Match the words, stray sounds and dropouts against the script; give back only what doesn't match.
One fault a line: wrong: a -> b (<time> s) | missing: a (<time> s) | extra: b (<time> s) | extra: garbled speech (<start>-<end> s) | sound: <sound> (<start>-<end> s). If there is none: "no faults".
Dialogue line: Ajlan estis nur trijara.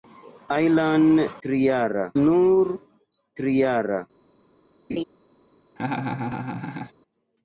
wrong: estis -> trijara (1.5 s)
sound: laugh (4.9-5.0 s)
sound: laugh (5.8-6.9 s)